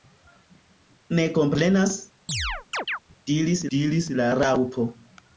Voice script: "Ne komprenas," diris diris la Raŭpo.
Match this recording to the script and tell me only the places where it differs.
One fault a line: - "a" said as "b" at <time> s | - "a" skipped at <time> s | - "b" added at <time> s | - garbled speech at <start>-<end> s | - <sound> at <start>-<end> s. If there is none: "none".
- chirp at 2.3-3.0 s